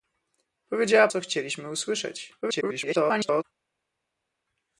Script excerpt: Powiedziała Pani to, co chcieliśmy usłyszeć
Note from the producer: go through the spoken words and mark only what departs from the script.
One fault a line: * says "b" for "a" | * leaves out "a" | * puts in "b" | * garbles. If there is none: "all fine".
* leaves out "Pani to"
* garbles